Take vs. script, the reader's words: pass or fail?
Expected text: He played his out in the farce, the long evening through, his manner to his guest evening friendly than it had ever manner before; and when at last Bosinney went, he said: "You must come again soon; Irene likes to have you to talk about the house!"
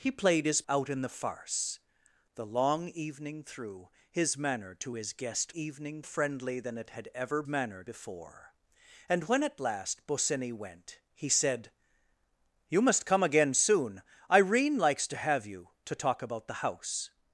pass